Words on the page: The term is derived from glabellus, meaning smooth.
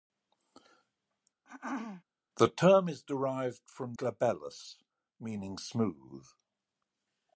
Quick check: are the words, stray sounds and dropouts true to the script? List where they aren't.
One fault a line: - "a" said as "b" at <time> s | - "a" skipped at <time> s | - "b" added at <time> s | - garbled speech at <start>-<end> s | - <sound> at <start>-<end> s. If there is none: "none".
- throat clearing at 1.4-2.0 s